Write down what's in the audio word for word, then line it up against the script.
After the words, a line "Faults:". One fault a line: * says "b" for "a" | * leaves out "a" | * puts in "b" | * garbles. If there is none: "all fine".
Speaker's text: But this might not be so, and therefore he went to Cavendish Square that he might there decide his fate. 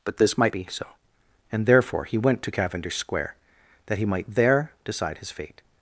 But this might be so, and therefore he went to Cavendish Square that he might there decide his fate.
Faults:
* leaves out "not"